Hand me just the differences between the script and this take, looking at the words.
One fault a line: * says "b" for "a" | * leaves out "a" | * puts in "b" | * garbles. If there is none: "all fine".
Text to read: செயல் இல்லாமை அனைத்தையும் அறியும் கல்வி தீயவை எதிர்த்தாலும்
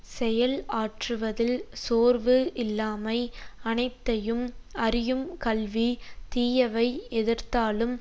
* puts in "ஆற்றுவதில் சோர்வு"